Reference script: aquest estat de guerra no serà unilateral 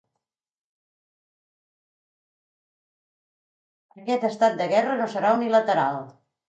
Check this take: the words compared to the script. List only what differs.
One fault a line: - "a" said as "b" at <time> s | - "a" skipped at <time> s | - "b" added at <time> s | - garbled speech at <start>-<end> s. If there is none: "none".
none